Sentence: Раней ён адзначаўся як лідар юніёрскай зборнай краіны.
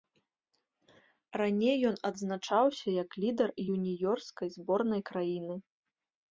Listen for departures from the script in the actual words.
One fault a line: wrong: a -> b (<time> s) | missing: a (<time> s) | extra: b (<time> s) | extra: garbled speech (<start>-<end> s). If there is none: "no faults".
no faults